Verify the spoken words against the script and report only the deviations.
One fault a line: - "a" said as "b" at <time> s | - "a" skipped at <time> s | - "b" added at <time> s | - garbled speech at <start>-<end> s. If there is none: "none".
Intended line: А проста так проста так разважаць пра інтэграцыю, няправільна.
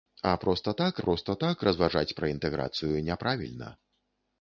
none